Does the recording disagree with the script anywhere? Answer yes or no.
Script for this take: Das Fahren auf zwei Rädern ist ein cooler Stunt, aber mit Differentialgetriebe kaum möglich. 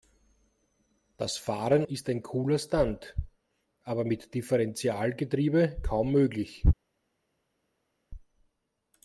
yes